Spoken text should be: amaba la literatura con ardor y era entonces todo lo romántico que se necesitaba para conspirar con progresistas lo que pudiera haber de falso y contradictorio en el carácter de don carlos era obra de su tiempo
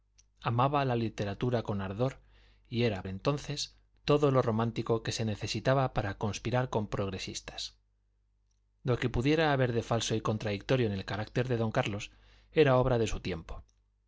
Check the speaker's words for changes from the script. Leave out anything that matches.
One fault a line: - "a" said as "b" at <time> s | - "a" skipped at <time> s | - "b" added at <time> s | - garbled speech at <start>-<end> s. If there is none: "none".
none